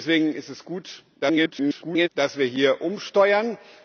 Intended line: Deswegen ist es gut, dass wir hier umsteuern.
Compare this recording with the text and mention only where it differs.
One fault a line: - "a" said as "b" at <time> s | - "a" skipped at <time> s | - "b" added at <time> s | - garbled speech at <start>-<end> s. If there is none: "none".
- garbled speech at 1.2-2.1 s